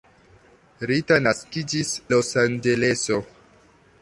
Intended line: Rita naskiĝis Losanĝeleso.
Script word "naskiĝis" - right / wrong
right